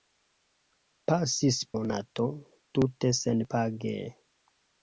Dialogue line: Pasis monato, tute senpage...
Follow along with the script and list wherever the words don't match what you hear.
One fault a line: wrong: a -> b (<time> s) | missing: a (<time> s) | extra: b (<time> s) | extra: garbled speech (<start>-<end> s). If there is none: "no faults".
no faults